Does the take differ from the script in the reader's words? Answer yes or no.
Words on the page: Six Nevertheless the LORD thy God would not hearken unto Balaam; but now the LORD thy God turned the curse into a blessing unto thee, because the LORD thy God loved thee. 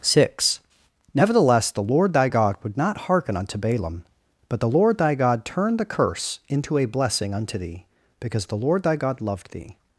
yes